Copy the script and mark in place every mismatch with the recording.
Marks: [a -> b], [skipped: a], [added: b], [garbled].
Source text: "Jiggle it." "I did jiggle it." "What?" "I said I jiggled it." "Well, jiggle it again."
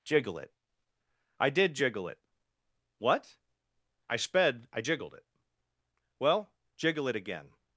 "Jiggle it." "I did jiggle it." "What?" "I [said -> sped] I jiggled it." "Well, jiggle it again."